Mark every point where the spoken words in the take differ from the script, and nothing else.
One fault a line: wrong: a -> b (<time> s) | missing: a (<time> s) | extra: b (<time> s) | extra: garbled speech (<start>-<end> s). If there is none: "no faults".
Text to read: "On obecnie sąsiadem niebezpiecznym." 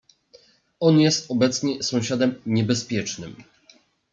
extra: jest (1.0 s)